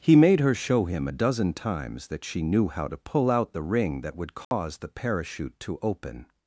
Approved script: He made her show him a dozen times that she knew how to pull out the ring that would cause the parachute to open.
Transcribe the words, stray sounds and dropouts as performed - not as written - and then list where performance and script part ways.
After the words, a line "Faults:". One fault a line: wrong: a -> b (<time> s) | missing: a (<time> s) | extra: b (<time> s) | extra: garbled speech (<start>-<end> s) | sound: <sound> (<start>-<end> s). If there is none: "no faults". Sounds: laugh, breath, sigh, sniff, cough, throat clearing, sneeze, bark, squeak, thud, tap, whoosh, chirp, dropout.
He made her show him a dozen times that she knew how to pull out the ring that would cause the parachute to open.
Faults:
sound: dropout (4.4-4.5 s)